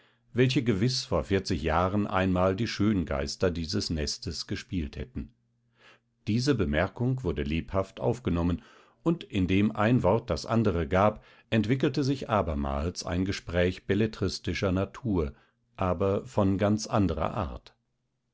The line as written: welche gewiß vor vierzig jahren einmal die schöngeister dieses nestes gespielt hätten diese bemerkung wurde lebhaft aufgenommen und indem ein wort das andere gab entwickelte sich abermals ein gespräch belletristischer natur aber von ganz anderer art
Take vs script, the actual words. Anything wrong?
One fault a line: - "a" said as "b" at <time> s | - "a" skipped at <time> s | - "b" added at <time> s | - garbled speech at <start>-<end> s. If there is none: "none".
none